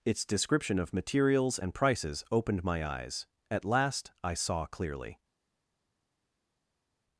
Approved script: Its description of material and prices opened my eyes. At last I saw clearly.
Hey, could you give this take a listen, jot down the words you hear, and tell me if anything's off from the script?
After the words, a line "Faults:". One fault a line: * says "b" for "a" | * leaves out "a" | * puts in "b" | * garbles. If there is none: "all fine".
Its description of materials and prices opened my eyes. At last I saw clearly.
Faults:
* says "materials" for "material"